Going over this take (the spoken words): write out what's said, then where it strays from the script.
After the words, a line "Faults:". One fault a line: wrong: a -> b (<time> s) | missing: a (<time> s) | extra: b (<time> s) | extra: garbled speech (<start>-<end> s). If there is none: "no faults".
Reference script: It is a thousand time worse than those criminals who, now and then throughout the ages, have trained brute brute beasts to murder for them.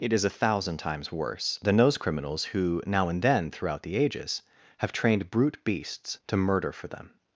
It is a thousand times worse than those criminals who, now and then throughout the ages, have trained brute beasts to murder for them.
Faults:
wrong: time -> times (0.8 s)
missing: brute (5.6 s)